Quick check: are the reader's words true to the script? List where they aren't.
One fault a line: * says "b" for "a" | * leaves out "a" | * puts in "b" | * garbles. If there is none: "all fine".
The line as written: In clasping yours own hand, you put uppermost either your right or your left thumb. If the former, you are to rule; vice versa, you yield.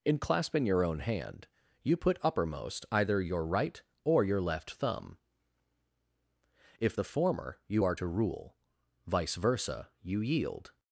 * says "your" for "yours"